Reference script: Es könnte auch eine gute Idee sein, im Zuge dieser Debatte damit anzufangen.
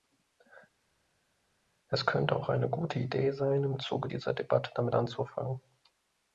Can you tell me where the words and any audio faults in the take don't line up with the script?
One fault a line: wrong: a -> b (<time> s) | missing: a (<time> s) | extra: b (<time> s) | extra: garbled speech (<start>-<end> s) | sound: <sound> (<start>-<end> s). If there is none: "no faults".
no faults